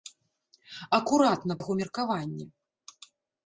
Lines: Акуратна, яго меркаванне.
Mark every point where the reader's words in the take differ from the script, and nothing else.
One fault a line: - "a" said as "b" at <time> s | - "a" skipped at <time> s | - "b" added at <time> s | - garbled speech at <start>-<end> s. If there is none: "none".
none